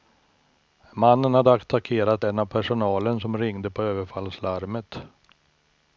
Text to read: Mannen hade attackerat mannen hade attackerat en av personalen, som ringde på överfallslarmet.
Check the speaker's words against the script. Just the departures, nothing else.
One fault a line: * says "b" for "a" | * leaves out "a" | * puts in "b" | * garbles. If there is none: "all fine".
* leaves out "mannen hade attackerat"